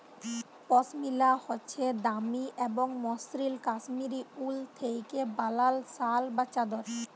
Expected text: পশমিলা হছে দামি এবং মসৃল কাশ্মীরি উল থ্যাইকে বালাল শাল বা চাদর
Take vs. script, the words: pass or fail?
pass